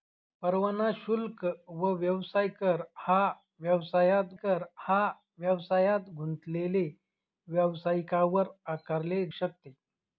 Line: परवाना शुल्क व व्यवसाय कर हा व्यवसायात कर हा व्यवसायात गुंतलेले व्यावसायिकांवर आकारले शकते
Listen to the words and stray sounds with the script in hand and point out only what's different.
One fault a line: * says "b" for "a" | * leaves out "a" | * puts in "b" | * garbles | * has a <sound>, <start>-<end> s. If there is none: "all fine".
all fine